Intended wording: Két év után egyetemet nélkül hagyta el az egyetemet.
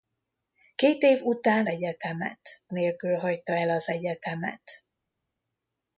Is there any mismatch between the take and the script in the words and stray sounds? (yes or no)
no